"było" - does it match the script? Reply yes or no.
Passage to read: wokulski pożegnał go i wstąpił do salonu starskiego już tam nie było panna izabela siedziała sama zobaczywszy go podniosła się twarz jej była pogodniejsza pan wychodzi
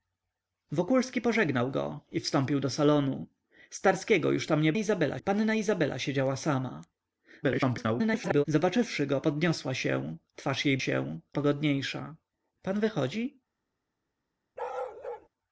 no